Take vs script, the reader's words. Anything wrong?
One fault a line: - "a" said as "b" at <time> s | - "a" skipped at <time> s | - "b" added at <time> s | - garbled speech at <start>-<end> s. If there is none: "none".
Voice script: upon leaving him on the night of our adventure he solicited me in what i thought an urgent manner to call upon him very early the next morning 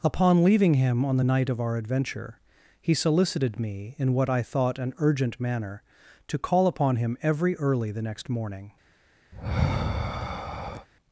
- "very" said as "every" at 7.2 s